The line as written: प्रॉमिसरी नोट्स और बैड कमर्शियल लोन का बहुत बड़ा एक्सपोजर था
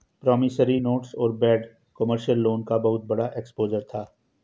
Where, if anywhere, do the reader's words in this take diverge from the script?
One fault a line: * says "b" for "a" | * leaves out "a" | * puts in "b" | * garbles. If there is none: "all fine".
all fine